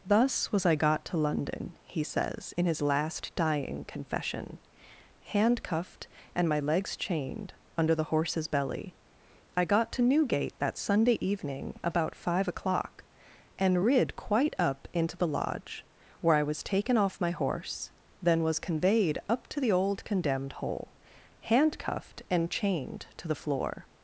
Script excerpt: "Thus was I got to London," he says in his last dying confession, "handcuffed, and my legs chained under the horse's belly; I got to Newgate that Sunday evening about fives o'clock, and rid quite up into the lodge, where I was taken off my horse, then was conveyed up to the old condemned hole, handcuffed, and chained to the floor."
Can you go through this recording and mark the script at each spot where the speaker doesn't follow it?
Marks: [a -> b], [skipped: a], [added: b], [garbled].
"Thus was I got to London," he says in his last dying confession, "handcuffed, and my legs chained under the horse's belly; I got to Newgate that Sunday evening about [fives -> five] o'clock, and rid quite up into the lodge, where I was taken off my horse, then was conveyed up to the old condemned hole, handcuffed, and chained to the floor."